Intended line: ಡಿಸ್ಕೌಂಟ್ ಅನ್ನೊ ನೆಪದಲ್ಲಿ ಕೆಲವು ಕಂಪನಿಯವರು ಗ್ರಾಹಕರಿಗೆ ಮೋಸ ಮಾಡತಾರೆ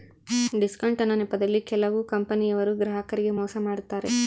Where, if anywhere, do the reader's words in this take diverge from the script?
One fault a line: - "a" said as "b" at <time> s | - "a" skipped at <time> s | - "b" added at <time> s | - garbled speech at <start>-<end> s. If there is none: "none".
none